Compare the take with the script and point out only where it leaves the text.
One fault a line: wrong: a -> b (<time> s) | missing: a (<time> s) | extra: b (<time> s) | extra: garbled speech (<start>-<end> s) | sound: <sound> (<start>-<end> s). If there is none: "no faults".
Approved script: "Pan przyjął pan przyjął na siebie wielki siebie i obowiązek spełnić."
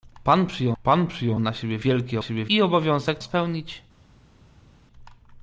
no faults